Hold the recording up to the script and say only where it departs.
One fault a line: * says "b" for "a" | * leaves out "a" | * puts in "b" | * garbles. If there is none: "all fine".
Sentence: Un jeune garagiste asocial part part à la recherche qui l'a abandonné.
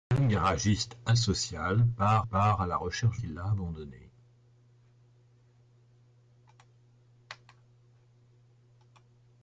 all fine